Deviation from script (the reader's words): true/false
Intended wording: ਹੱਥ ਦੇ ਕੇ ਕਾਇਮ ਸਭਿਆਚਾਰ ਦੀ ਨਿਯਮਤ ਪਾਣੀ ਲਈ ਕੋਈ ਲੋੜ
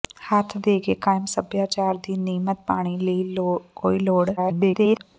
true